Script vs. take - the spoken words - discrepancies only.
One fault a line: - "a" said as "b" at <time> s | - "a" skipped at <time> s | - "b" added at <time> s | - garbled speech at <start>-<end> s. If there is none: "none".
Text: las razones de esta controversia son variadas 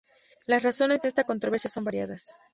none